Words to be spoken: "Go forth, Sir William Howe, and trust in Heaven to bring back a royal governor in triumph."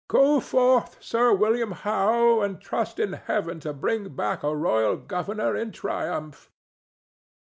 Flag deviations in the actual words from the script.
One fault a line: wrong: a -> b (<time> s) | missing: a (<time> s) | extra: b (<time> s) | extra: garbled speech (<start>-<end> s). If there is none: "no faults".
no faults